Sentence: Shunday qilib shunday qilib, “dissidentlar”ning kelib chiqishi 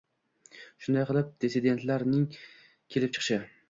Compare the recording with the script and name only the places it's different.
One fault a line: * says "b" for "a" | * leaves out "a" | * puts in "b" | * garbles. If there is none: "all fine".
* leaves out "shunday qilib"